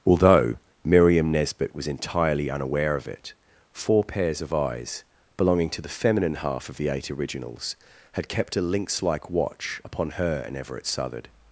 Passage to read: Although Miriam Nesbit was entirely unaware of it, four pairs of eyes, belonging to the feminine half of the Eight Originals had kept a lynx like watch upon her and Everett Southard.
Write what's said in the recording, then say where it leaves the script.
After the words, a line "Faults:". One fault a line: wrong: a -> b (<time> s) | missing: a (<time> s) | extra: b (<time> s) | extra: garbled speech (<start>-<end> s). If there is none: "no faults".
Although Miriam Nesbit was entirely unaware of it, four pairs of eyes, belonging to the feminine half of the Eight Originals had kept a lynx like watch upon her and Everett Southard.
Faults:
no faults